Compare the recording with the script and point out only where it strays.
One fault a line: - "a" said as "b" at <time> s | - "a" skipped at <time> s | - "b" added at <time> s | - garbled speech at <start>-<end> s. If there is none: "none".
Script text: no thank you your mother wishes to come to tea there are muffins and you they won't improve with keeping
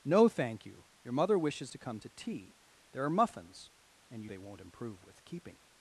none